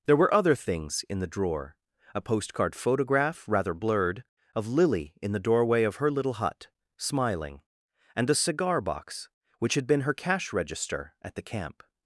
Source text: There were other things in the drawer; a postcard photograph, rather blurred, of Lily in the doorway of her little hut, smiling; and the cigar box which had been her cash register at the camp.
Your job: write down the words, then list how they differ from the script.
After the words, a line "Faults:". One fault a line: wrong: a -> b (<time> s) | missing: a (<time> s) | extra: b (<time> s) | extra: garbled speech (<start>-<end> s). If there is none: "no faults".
There were other things in the drawer; a postcard photograph, rather blurred, of Lily in the doorway of her little hut, smiling; and a cigar box which had been her cash register at the camp.
Faults:
wrong: the -> a (8.3 s)